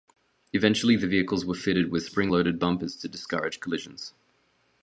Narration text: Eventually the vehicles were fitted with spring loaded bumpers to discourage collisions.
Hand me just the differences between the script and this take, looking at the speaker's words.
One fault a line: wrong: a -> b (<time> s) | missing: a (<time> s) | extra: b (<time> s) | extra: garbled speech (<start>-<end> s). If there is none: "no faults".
no faults